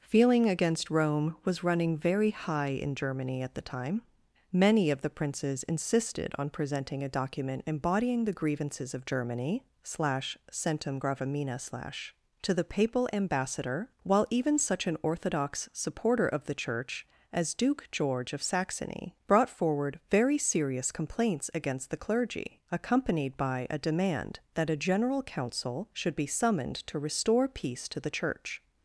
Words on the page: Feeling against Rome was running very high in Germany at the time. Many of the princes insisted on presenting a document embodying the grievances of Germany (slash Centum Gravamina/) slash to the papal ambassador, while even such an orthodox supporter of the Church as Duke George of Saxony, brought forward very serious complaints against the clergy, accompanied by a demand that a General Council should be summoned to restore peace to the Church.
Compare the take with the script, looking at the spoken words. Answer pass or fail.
pass